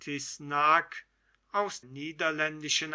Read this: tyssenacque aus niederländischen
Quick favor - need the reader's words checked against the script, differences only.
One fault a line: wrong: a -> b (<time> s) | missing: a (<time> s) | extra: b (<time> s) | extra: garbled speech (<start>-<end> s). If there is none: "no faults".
no faults